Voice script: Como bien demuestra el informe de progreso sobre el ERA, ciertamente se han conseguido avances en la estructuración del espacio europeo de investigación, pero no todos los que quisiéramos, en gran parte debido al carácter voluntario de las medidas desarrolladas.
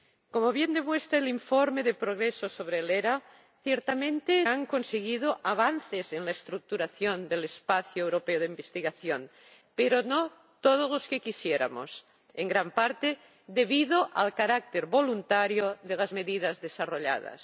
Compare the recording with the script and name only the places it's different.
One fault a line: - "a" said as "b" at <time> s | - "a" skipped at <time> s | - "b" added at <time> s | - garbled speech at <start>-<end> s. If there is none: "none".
- "se" skipped at 4.5 s